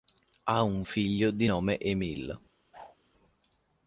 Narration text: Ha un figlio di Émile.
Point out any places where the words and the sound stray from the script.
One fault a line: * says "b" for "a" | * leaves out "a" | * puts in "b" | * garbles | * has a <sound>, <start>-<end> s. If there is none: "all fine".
* puts in "nome"
* has a whoosh, 2.7-3.0 s